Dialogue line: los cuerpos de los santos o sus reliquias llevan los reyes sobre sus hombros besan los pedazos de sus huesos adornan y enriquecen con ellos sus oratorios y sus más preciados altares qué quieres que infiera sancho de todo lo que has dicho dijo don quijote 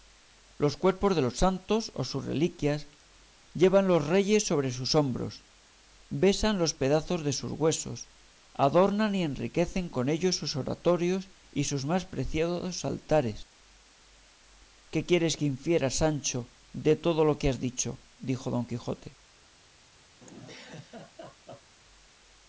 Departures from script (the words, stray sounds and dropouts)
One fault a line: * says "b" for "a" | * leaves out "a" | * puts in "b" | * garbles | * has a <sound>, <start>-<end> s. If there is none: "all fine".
* has a laugh, 20.2-21.8 s